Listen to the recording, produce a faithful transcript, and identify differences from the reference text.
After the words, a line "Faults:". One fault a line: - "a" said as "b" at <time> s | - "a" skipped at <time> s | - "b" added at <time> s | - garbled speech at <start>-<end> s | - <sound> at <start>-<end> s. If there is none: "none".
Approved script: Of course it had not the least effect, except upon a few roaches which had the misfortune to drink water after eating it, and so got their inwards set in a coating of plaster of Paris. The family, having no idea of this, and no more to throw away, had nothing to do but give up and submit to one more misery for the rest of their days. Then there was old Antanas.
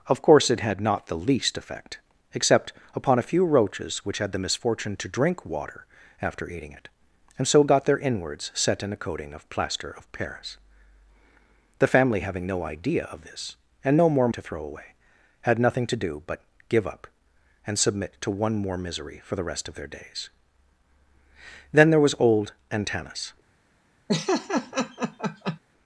Of course it had not the least effect, except upon a few roaches which had the misfortune to drink water after eating it, and so got their inwards set in a coating of plaster of Paris. The family, having no idea of this, and no more to throw away, had nothing to do but give up and submit to one more misery for the rest of their days. Then there was old Antanas.
Faults:
- laugh at 24.1-25.6 s